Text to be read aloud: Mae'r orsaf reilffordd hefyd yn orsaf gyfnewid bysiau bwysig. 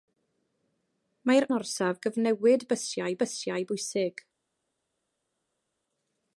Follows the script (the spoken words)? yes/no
no